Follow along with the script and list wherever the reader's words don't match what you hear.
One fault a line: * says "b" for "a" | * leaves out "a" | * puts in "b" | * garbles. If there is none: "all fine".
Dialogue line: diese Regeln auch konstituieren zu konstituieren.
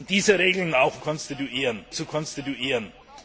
all fine